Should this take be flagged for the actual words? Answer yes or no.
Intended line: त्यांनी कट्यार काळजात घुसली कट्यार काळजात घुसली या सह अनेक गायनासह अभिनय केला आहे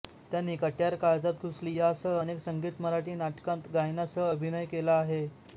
yes